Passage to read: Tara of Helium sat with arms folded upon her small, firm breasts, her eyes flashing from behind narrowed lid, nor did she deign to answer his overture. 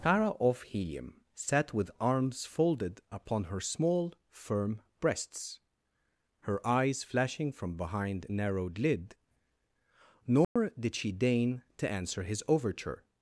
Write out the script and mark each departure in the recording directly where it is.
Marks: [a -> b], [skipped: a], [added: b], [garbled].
Tara of Helium sat with arms folded upon her small, firm breasts, her eyes flashing from behind narrowed lid, nor did she deign to answer his overture.